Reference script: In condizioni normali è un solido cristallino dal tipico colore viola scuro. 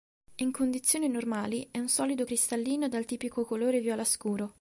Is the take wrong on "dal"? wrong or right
right